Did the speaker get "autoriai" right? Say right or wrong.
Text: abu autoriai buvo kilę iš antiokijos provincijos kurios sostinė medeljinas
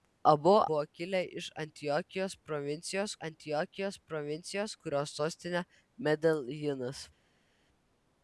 wrong